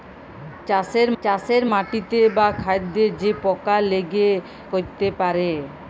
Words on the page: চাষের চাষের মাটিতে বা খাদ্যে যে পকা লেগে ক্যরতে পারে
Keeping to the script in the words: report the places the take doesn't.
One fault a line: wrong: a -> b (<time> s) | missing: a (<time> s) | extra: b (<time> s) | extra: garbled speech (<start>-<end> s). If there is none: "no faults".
no faults